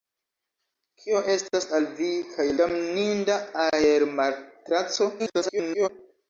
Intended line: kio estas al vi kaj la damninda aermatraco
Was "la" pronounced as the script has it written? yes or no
no